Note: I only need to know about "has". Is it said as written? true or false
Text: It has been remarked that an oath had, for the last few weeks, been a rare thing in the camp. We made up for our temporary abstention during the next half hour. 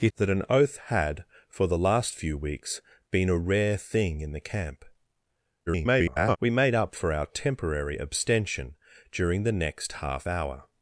false